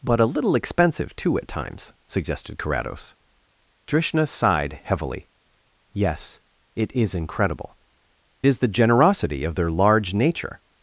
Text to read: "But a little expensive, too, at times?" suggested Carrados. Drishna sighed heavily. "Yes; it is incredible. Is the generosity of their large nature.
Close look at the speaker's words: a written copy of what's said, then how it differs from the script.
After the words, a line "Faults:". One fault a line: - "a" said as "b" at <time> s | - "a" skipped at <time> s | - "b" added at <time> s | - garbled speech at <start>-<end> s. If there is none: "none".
"But a little expensive, too, at times?" suggested Carrados. Drishna sighed heavily. "Yes; it is incredible. Is the generosity of their large nature.
Faults:
none